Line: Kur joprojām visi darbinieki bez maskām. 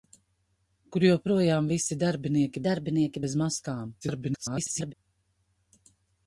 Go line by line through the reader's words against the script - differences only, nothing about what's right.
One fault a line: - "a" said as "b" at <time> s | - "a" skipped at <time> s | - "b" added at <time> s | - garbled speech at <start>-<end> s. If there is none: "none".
- "darbinieki" added at 2.7 s
- garbled speech at 4.0-4.9 s